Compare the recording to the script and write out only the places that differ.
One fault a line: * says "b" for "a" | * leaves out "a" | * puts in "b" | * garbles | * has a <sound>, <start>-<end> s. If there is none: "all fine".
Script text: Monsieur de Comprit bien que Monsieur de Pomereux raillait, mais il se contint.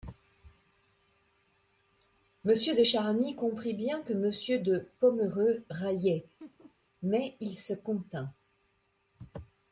* puts in "Charny"
* has a laugh, 6.4-6.8 s